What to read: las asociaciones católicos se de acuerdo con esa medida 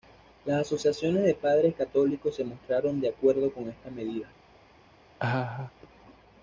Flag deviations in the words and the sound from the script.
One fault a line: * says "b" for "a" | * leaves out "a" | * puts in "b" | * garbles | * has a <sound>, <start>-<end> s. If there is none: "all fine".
* puts in "de padres"
* puts in "mostraron"
* says "esta" for "esa"
* has a laugh, 5.2-5.7 s